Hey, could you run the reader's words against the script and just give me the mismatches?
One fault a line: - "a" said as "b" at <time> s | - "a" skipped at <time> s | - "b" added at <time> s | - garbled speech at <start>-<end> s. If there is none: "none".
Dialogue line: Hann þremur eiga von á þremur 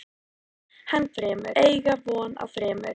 none